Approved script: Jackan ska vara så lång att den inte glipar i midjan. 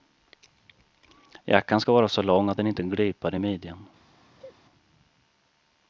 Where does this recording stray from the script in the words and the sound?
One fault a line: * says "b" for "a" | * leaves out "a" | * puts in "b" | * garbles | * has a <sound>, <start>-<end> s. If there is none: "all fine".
* has a sneeze, 4.4-4.6 s